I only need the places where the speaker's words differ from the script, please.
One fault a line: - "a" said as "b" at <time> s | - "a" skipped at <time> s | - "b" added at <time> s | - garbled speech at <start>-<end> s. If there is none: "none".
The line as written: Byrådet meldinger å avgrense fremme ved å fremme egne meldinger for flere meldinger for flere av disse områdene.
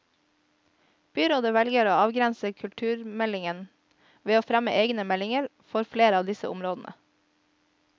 - "meldinger" said as "velger" at 1.6 s
- "fremme" said as "kulturmeldingen" at 2.6 s
- "meldinger for flere" skipped at 6.2 s